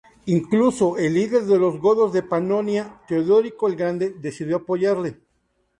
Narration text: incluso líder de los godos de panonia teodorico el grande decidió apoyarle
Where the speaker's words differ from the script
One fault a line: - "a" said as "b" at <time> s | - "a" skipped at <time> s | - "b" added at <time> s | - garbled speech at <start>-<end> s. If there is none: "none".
- "el" added at 1.0 s